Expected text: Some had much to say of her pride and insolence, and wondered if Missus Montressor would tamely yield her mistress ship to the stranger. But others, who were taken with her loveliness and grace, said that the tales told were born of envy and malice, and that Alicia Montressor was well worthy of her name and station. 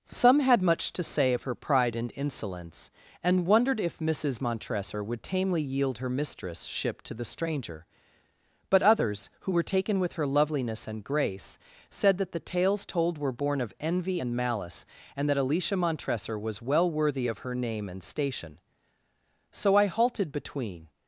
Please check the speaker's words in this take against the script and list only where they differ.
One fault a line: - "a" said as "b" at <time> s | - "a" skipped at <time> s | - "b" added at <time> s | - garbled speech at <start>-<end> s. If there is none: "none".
- "So I halted between" added at 19.5 s